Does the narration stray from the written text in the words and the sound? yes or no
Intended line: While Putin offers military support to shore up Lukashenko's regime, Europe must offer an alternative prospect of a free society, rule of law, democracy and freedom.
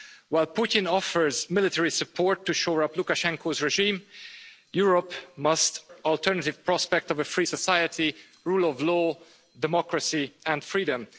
yes